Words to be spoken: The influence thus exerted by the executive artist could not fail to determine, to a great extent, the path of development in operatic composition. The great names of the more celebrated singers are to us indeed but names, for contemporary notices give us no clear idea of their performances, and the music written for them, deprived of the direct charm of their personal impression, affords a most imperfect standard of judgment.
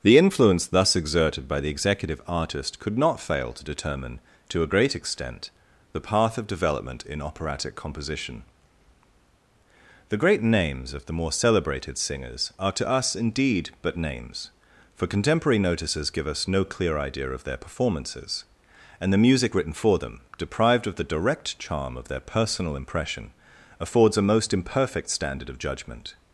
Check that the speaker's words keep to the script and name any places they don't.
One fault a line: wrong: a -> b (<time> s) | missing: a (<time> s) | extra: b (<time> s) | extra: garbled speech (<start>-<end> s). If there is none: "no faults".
no faults